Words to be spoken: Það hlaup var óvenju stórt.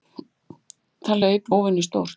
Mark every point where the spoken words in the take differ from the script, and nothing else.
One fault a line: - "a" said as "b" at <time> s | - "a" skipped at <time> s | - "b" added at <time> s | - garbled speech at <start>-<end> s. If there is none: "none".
- "var" skipped at 1.5 s